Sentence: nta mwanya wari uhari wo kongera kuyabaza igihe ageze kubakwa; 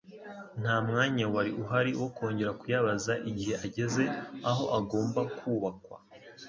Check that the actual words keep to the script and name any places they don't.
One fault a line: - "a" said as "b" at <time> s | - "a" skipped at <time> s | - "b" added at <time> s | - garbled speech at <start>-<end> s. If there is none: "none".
- "aho agomba" added at 4.5 s